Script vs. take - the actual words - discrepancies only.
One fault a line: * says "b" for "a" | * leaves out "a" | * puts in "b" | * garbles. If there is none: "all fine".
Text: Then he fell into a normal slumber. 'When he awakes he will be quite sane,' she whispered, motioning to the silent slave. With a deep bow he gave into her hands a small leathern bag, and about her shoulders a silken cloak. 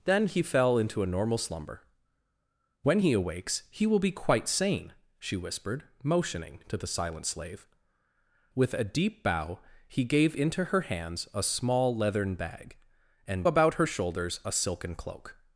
all fine